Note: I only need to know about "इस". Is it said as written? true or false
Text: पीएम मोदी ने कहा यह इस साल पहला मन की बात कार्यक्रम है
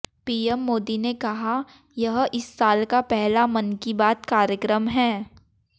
true